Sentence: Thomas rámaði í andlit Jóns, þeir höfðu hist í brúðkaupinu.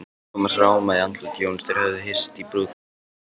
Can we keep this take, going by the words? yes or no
yes